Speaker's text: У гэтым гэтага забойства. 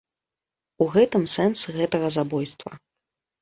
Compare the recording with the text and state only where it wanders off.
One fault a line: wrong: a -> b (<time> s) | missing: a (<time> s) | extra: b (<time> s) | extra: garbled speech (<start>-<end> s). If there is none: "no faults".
extra: сэнс (1.3 s)